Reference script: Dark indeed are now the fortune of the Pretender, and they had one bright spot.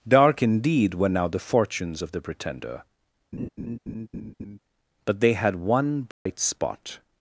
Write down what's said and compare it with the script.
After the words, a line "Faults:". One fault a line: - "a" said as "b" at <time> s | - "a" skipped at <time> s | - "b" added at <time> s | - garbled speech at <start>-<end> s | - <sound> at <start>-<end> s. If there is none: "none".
Dark indeed were now the fortunes of the Pretender, but they had one bright spot.
Faults:
- "are" said as "were" at 0.9 s
- "fortune" said as "fortunes" at 1.4 s
- laugh at 3.3-4.6 s
- "and" said as "but" at 5.1 s
- dropout at 6.1-6.3 s